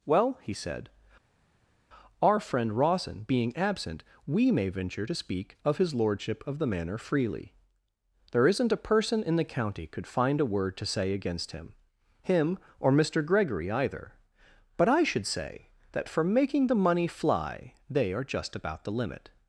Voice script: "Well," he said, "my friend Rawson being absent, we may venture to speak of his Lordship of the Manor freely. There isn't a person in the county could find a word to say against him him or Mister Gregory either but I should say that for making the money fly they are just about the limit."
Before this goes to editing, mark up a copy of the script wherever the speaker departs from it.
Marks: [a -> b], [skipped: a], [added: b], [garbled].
"Well," he said, ["my -> our] friend Rawson being absent, we may venture to speak of his Lordship of the Manor freely. There isn't a person in the county could find a word to say against him him or Mister Gregory either but I should say that for making the money fly they are just about the limit."